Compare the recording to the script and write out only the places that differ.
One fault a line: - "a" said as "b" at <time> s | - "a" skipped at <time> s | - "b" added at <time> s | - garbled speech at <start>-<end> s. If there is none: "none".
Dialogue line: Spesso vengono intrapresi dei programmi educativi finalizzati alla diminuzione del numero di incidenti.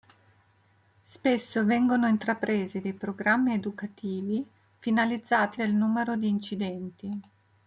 - "alla diminuzione" skipped at 5.6 s